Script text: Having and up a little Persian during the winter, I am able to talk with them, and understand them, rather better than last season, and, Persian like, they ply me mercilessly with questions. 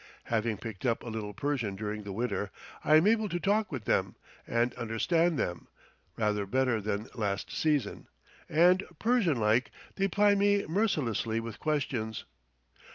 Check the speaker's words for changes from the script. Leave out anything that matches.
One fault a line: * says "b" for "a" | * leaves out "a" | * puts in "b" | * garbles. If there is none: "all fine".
* says "picked" for "and"